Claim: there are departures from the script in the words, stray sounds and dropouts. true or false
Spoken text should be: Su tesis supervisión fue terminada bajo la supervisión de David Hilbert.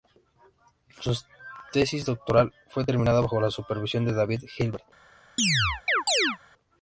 true